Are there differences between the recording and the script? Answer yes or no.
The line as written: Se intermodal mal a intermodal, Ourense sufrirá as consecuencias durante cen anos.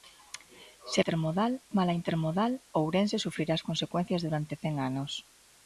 no